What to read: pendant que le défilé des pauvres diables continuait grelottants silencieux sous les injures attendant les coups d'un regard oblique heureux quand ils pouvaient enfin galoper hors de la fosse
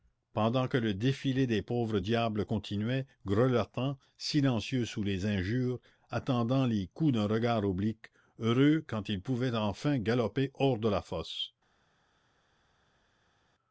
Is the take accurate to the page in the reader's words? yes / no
yes